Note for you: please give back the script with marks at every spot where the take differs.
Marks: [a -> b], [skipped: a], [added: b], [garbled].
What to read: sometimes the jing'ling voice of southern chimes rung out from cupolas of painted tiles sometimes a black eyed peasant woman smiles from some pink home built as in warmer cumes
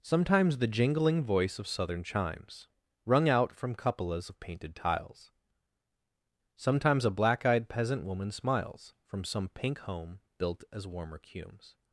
sometimes the jing'ling voice of southern chimes rung out from cupolas of painted tiles sometimes a black eyed peasant woman smiles from some pink home built as [skipped: in] warmer cumes